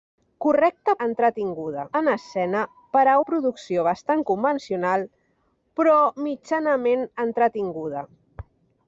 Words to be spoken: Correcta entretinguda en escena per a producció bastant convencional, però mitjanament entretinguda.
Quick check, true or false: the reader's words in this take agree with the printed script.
true